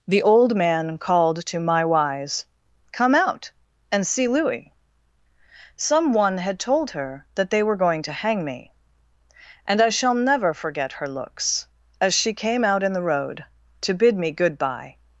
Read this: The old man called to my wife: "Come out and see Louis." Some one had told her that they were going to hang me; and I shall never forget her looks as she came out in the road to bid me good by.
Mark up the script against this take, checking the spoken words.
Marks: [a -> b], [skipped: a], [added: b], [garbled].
The old man called to my [wife: -> wise] "Come out and see Louis." Some one had told her that they were going to hang me; and I shall never forget her looks as she came out in the road to bid me good by.